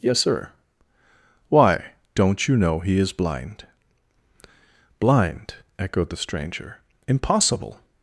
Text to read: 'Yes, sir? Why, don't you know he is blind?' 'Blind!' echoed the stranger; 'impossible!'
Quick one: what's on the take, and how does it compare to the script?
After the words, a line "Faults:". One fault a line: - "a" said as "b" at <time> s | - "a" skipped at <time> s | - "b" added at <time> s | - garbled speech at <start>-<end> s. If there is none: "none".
'Yes, sir? Why, don't you know he is blind?' 'Blind!' echoed the stranger; 'impossible!'
Faults:
none